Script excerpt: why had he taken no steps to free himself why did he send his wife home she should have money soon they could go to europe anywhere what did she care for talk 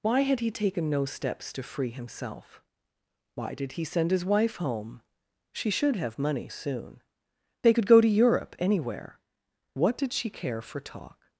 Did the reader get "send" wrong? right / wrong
right